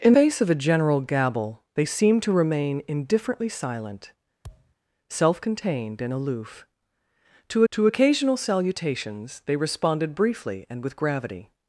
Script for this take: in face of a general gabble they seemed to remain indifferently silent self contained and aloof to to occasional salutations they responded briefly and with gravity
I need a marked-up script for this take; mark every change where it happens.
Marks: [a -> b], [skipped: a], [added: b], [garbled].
in face of a general gabble they seemed to remain indifferently silent self contained and aloof to to occasional salutations they responded briefly and with gravity